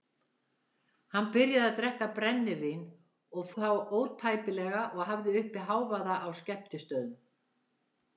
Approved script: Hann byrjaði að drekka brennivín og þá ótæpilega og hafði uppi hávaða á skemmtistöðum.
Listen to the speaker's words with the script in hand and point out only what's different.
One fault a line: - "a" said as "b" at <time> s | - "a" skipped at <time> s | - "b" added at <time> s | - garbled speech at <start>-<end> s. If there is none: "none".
none